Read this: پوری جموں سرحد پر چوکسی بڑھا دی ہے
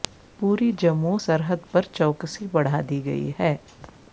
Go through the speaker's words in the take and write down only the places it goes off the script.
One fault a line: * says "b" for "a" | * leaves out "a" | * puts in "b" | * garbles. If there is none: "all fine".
* puts in "گئی"